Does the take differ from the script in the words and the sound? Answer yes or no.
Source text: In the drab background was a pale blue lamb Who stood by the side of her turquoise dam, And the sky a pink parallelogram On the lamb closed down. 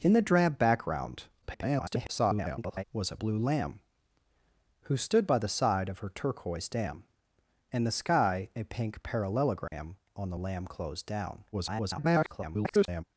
yes